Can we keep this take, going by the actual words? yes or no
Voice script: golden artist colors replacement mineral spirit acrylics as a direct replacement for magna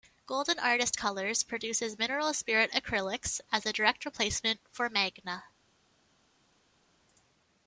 no